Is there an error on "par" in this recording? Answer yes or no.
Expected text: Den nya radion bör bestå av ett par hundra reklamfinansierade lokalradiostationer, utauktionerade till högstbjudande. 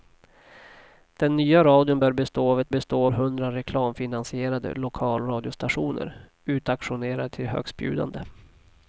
yes